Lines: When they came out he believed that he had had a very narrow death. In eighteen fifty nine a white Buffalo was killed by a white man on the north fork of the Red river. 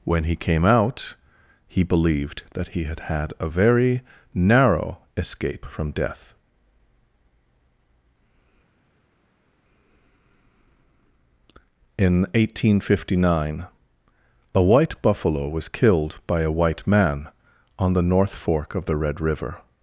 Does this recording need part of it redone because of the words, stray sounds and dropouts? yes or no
yes